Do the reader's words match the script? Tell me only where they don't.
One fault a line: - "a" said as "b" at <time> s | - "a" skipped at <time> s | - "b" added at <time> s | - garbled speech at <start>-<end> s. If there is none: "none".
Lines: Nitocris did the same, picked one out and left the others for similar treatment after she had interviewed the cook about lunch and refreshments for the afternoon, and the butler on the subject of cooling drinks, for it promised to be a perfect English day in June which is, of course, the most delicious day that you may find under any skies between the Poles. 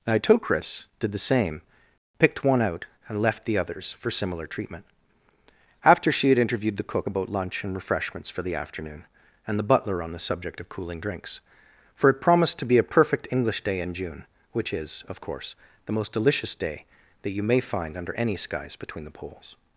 none